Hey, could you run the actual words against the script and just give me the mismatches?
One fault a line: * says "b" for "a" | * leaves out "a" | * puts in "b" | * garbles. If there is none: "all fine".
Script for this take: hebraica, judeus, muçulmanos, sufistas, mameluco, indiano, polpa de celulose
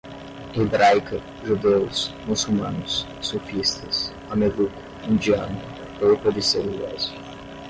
all fine